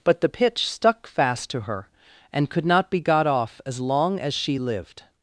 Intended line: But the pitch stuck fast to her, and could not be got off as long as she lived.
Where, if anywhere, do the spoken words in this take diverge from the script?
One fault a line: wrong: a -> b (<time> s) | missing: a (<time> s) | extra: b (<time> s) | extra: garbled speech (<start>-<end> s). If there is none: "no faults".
no faults